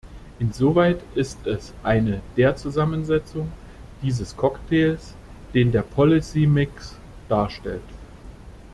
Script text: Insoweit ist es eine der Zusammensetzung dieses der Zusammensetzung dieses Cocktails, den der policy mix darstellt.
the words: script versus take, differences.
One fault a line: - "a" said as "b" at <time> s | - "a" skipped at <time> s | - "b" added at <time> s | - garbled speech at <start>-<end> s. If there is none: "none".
- "der Zusammensetzung dieses" skipped at 4.3 s